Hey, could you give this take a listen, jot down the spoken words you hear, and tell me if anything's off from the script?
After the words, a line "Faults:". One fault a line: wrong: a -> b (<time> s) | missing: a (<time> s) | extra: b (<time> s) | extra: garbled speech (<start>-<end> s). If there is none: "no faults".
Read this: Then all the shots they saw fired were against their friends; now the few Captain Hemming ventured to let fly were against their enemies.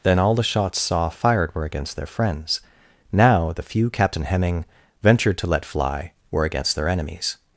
Then all the shots saw fired were against their friends; now the few Captain Hemming ventured to let fly were against their enemies.
Faults:
missing: they (0.8 s)